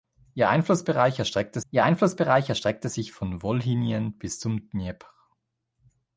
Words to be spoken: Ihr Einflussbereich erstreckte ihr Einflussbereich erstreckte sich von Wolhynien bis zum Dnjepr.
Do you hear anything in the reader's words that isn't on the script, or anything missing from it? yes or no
no